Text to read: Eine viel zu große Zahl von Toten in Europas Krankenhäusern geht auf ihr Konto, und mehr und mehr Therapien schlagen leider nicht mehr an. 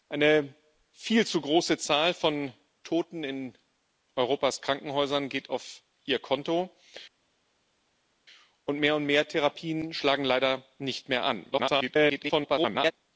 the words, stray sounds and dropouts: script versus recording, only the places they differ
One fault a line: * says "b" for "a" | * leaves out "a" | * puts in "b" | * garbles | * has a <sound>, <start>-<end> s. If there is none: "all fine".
* garbles